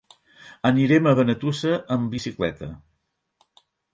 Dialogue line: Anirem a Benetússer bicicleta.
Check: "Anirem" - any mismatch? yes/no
no